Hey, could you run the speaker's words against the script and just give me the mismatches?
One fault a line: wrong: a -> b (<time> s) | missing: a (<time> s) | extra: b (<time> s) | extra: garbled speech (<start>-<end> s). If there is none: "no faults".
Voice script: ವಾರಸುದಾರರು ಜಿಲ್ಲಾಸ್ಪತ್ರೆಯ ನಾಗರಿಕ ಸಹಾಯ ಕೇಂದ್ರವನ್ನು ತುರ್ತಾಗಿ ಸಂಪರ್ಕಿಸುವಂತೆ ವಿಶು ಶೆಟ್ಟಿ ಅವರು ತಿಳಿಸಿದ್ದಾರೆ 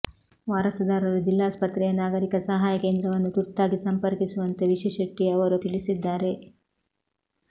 no faults